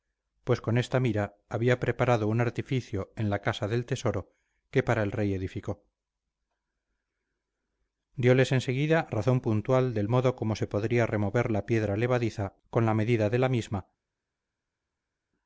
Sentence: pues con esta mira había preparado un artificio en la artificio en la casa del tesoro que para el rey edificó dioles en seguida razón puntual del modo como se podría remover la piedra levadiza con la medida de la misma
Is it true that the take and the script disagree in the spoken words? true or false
true